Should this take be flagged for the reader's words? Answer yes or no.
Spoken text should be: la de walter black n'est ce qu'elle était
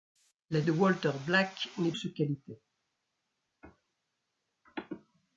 no